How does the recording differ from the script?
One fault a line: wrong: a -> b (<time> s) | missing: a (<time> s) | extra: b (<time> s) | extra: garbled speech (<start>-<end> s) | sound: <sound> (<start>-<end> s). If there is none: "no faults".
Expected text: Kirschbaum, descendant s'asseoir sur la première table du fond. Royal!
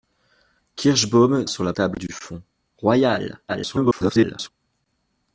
missing: descendant s'asseoir (1.4 s)
missing: première (1.7 s)
extra: garbled speech (3.5-4.5 s)